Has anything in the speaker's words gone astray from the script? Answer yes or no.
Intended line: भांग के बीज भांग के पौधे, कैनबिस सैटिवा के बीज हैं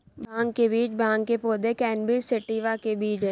no